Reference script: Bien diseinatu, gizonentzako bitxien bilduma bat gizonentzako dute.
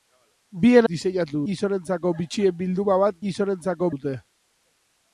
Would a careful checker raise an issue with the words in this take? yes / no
no